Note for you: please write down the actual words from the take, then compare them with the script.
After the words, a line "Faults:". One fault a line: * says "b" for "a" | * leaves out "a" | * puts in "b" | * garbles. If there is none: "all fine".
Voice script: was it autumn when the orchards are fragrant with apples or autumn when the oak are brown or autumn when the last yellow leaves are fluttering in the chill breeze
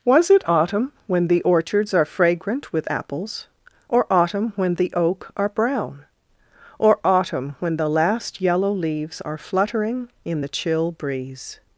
was it autumn when the orchards are fragrant with apples or autumn when the oak are brown or autumn when the last yellow leaves are fluttering in the chill breeze
Faults:
all fine